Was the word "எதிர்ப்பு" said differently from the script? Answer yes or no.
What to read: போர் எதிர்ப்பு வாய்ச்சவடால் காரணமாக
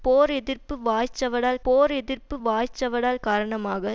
no